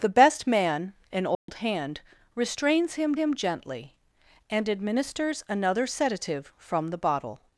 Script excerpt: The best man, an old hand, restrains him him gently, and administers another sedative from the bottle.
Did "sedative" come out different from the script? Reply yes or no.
no